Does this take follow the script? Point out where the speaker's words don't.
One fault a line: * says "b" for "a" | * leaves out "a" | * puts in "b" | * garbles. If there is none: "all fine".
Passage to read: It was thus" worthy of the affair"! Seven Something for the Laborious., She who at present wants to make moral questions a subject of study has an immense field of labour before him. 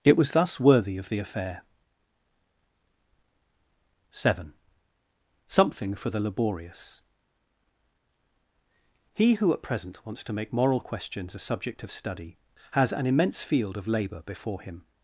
* says "He" for "She"